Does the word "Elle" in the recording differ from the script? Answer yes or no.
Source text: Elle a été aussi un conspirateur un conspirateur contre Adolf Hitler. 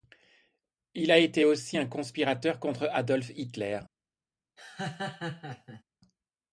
yes